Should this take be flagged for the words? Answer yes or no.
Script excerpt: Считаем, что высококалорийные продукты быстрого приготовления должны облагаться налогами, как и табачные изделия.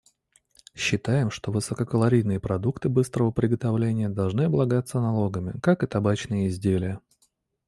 no